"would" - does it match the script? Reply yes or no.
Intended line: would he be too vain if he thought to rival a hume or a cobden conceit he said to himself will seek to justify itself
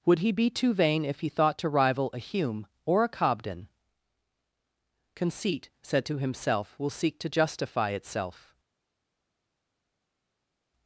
yes